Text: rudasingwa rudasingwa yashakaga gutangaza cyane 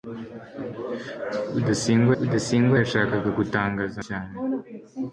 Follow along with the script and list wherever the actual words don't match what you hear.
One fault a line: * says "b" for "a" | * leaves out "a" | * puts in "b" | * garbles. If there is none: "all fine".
all fine